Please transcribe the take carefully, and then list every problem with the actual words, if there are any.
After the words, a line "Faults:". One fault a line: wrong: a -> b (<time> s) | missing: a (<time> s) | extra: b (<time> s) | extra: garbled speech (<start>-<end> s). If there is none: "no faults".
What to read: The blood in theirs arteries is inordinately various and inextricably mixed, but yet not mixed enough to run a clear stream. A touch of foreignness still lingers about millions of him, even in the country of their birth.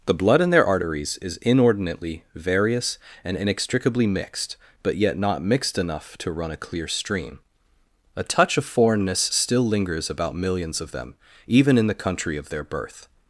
The blood in their arteries is inordinately various and inextricably mixed, but yet not mixed enough to run a clear stream. A touch of foreignness still lingers about millions of them, even in the country of their birth.
Faults:
wrong: theirs -> their (0.5 s)
wrong: him -> them (10.9 s)